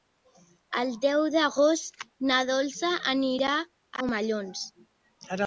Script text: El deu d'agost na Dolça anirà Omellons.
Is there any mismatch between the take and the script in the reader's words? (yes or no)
no